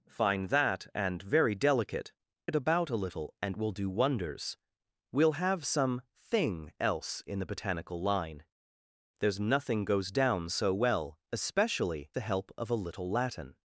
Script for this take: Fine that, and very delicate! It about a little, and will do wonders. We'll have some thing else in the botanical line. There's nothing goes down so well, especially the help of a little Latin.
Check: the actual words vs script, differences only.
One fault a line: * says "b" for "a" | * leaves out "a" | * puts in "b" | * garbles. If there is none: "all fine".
all fine